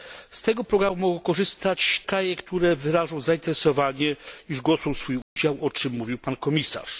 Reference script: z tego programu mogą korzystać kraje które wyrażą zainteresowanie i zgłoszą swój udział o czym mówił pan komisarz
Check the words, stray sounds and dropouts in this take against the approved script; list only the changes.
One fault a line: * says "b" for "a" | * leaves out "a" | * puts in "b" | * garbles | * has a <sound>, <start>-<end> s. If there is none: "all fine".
* has a dropout, 5.2-5.4 s